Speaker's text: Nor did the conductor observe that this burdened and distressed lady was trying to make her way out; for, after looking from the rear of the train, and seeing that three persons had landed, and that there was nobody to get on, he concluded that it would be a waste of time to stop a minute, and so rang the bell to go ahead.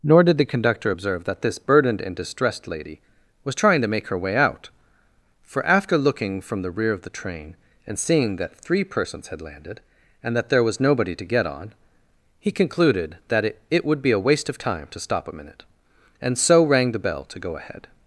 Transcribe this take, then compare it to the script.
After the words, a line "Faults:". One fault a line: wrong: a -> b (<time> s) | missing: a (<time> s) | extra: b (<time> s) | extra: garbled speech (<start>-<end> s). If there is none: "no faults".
Nor did the conductor observe that this burdened and distressed lady was trying to make her way out; for, after looking from the rear of the train, and seeing that three persons had landed, and that there was nobody to get on, he concluded that it it would be a waste of time to stop a minute, and so rang the bell to go ahead.
Faults:
extra: it (13.7 s)